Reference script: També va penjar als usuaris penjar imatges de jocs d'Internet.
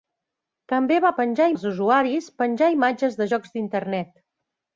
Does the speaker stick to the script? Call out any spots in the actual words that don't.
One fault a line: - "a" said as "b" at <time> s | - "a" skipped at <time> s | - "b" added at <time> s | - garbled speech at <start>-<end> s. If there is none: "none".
none